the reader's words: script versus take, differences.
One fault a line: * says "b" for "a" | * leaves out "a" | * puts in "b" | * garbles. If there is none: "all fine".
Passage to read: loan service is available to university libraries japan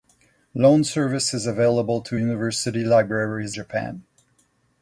all fine